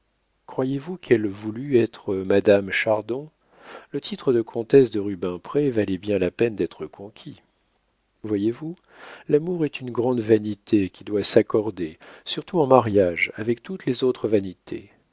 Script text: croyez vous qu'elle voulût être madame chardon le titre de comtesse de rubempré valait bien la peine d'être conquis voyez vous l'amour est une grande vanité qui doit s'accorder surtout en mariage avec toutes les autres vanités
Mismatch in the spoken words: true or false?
false